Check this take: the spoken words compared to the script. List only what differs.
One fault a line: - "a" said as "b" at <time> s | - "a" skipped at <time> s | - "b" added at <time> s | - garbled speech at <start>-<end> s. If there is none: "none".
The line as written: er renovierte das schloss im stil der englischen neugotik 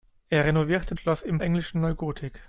- "das" skipped at 0.9 s
- "stil der" skipped at 1.4 s